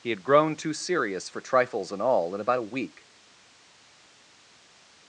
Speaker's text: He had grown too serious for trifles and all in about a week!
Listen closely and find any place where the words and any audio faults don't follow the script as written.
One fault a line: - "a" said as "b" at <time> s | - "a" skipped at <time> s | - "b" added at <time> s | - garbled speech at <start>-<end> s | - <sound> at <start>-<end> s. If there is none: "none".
none